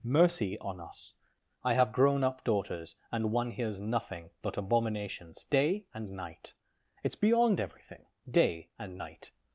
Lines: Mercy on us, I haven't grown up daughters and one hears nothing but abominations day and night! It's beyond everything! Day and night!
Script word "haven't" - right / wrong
wrong